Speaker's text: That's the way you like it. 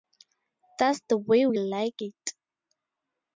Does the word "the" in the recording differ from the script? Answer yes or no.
no